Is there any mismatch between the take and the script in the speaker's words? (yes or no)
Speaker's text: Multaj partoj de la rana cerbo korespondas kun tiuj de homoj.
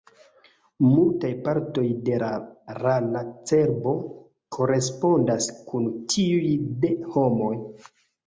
no